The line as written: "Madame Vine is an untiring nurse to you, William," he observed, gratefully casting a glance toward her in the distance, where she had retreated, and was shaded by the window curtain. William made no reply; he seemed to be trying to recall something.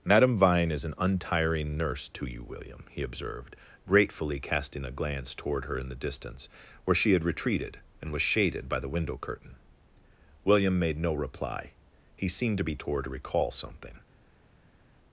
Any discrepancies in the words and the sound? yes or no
yes